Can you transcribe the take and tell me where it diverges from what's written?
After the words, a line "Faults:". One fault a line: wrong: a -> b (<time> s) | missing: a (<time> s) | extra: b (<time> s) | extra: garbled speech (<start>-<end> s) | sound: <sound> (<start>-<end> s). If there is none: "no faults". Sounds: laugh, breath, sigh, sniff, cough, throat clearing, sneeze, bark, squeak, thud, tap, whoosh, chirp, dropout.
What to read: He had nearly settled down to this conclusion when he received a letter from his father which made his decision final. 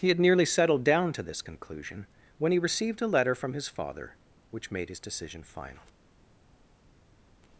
He had nearly settled down to this conclusion when he received a letter from his father which made his decision final.
Faults:
no faults